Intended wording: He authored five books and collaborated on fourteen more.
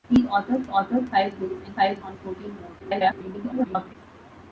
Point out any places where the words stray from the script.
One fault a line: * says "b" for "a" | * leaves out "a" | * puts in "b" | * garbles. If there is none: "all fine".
* puts in "authored"
* says "five" for "collaborated"
* garbles